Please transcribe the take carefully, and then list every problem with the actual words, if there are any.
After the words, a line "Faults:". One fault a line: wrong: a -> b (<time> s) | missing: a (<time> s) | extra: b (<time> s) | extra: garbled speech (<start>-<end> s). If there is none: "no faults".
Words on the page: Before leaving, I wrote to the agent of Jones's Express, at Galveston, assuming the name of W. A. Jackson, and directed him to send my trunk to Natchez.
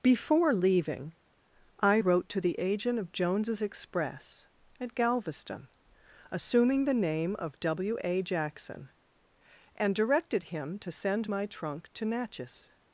Before leaving, I wrote to the agent of Jones's Express, at Galveston, assuming the name of W. A. Jackson, and directed him to send my trunk to Natchez.
Faults:
no faults